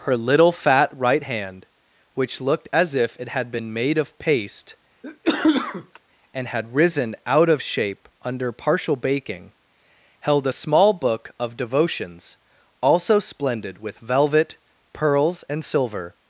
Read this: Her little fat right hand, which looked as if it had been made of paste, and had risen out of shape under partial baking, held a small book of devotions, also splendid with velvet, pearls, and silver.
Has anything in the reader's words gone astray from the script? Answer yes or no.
no